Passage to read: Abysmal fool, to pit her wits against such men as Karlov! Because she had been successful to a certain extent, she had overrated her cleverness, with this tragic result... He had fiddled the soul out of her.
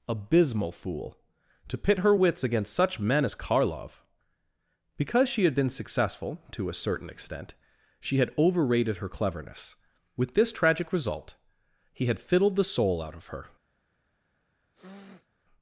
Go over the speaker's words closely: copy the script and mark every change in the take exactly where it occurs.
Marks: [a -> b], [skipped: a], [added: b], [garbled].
Abysmal fool, to pit her wits against such men as Karlov! Because she had been successful to a certain extent, she had overrated her cleverness, with this tragic result... He had fiddled the soul out of her.